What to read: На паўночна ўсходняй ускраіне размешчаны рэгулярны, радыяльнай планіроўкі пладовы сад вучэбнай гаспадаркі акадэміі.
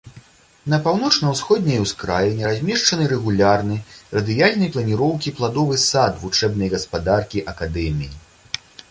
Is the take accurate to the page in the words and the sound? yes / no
yes